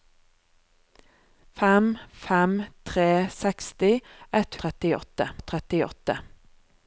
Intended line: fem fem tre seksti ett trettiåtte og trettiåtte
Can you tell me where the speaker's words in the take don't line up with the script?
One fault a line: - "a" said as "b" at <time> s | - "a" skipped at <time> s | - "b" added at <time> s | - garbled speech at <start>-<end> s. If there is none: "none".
none